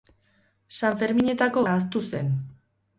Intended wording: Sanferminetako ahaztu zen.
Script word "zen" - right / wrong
right